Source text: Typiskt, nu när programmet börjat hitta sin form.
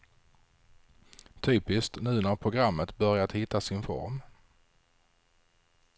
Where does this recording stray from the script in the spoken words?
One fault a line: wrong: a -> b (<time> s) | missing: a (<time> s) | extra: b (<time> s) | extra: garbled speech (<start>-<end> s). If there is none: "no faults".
no faults